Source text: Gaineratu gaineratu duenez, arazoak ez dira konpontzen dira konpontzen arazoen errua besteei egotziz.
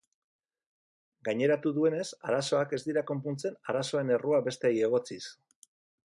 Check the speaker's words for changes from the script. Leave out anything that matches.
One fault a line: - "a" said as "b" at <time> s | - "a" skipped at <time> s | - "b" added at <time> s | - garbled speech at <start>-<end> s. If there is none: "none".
- "gaineratu" skipped at 1.7 s
- "dira konpontzen" skipped at 3.6 s